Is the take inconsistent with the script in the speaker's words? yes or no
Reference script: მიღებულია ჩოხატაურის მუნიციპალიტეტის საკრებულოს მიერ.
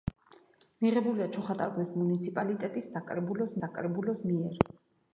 yes